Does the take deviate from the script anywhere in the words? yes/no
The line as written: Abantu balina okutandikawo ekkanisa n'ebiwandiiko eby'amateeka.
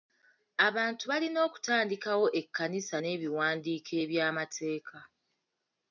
no